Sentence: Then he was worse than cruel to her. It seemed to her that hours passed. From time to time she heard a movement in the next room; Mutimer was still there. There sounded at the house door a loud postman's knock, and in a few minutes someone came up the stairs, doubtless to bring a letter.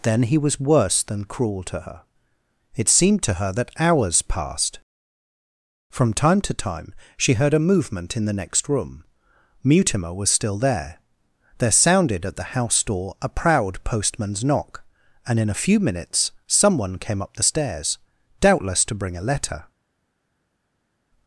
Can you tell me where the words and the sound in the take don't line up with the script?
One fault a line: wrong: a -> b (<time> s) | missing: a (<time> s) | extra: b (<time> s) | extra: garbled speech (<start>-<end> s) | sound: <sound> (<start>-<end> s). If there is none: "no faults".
wrong: loud -> proud (13.3 s)